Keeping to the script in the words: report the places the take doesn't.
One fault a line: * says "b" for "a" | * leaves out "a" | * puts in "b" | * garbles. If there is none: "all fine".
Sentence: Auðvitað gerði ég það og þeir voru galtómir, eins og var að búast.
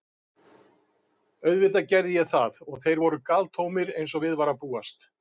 * puts in "við"